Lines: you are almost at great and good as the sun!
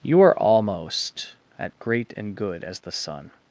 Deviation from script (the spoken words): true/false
false